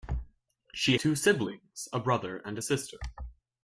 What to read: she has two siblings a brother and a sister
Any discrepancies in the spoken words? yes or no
yes